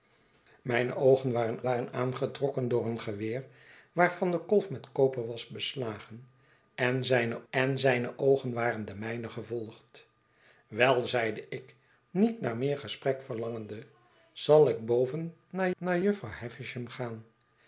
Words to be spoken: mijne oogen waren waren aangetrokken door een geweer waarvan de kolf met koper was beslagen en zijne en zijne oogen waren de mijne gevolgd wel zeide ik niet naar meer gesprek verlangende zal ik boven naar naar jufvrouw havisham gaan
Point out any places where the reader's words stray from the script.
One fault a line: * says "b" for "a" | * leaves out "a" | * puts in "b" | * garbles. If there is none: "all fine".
all fine